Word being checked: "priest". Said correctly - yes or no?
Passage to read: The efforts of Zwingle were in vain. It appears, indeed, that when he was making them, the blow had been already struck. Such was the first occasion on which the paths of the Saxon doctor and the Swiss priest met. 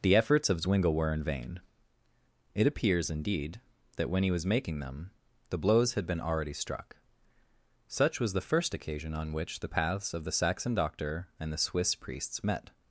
no